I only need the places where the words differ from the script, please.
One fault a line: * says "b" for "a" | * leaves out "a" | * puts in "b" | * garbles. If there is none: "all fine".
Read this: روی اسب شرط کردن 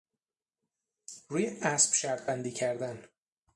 * puts in "بندی"